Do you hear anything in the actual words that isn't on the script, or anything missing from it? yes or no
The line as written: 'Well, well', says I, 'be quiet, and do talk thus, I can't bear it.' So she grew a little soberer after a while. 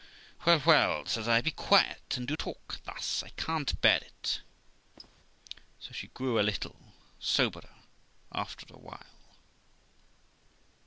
no